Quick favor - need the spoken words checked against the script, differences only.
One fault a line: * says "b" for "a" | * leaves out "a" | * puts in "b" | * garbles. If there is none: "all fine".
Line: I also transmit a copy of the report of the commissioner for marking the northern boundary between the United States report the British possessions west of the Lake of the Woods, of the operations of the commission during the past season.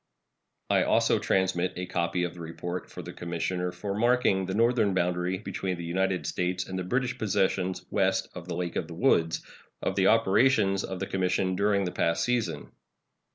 * says "and" for "report"